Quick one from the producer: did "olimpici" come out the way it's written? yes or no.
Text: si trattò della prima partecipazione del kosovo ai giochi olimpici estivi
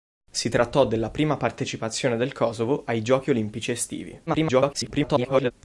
yes